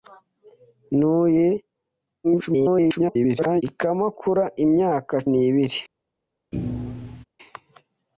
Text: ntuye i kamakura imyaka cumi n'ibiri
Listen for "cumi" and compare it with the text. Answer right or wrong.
wrong